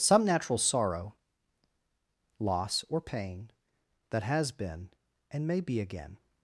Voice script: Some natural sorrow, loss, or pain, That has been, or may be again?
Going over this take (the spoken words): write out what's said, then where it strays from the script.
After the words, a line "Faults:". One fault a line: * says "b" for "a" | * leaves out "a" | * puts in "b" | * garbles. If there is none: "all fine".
Some natural sorrow, loss, or pain, That has been, and may be again?
Faults:
* says "and" for "or"